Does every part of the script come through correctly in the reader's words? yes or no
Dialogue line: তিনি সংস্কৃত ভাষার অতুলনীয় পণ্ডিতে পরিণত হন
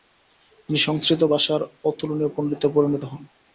yes